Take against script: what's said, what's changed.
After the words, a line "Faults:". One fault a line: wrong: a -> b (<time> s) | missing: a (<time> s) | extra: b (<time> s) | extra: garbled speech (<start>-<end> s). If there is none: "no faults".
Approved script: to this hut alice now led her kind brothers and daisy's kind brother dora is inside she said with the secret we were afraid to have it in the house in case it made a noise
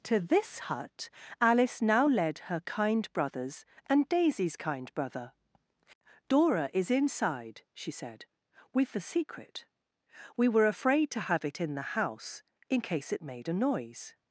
to this hut alice now led her kind brothers and daisy's kind brother dora is inside she said with the secret we were afraid to have it in the house in case it made a noise
Faults:
no faults